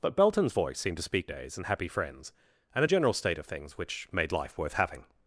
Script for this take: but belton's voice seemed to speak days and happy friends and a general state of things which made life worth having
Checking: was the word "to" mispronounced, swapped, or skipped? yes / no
no